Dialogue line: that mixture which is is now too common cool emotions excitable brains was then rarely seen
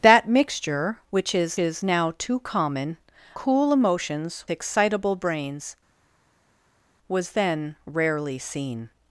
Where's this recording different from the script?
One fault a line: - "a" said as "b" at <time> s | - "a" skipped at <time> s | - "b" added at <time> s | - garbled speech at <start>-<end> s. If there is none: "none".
none